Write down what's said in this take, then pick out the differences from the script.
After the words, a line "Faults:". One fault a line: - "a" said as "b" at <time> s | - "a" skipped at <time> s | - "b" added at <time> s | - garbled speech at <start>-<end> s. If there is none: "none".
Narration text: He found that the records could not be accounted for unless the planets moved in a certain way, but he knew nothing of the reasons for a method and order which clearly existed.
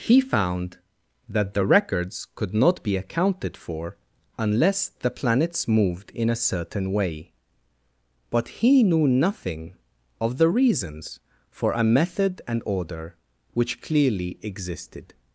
He found that the records could not be accounted for unless the planets moved in a certain way, but he knew nothing of the reasons for a method and order which clearly existed.
Faults:
none